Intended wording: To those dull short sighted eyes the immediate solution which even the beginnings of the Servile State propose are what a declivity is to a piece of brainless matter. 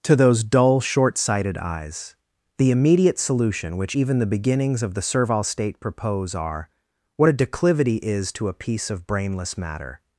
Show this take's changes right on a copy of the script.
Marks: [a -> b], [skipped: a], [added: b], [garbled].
To those dull short sighted eyes the immediate solution which even the beginnings of the Servile State propose are what a declivity is to a piece of brainless matter.